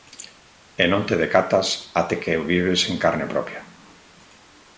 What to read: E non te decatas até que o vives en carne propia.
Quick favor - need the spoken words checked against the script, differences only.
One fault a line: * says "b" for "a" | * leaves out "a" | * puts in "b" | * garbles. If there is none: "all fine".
all fine